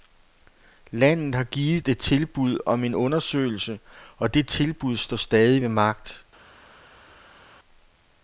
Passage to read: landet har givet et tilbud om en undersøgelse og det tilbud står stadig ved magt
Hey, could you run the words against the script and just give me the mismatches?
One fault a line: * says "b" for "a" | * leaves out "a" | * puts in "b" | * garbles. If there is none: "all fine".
all fine